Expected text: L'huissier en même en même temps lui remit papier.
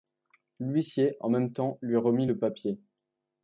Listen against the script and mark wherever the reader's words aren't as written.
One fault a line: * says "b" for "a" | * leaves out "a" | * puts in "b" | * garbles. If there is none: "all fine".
* leaves out "en même"
* puts in "le"